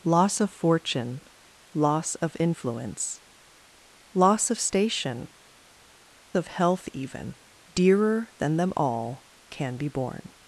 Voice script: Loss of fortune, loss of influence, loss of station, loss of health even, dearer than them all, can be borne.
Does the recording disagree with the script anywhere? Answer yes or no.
yes